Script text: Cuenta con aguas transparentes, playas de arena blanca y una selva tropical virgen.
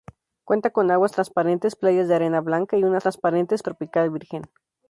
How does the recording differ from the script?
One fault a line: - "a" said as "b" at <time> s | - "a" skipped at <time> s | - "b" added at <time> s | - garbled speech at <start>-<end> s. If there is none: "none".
- "selva" said as "transparentes" at 3.0 s